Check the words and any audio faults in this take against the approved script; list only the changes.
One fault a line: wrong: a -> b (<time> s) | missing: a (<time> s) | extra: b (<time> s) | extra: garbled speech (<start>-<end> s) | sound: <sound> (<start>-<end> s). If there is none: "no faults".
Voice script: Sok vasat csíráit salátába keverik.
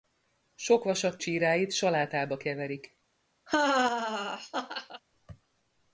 sound: laugh (3.5-5.0 s)